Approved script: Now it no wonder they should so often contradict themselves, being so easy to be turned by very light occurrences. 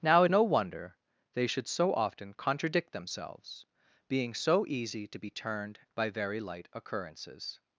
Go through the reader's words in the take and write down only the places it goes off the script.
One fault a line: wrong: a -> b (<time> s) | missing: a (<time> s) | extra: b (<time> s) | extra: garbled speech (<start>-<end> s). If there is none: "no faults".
no faults